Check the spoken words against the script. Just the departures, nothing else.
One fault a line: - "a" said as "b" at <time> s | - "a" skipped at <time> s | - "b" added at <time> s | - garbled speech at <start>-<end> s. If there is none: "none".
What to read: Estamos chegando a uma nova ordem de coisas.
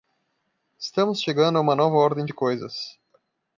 none